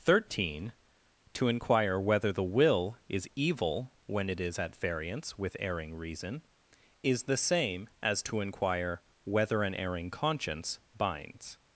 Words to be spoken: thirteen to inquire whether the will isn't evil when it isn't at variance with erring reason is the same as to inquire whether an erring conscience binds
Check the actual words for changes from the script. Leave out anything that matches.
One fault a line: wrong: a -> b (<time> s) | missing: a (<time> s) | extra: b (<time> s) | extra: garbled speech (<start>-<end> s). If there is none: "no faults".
wrong: isn't -> is (3.1 s)
wrong: isn't -> is (4.4 s)